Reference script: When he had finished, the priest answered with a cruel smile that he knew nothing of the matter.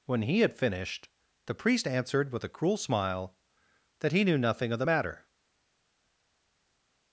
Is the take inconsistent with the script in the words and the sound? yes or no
no